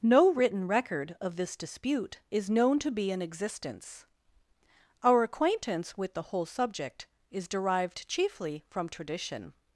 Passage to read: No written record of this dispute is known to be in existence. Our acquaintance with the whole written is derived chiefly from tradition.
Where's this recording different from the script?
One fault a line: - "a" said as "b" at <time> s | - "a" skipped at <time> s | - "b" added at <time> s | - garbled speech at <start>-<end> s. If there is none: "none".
- "written" said as "subject" at 6.5 s